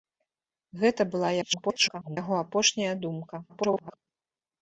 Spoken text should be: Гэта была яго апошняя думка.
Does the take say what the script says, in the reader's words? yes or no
no